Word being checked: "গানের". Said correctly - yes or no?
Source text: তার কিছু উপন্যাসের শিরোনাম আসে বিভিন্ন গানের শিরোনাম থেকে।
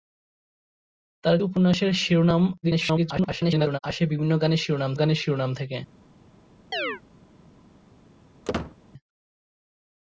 yes